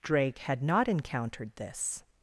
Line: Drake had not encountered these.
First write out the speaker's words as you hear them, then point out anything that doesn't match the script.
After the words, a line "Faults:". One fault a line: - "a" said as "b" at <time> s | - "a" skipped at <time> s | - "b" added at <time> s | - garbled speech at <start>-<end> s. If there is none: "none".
Drake had not encountered this.
Faults:
- "these" said as "this" at 1.6 s